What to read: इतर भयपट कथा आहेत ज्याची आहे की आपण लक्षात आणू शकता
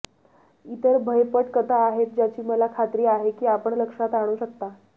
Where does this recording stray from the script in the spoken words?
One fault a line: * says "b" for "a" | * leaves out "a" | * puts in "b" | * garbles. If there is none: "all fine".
* puts in "मला खात्री"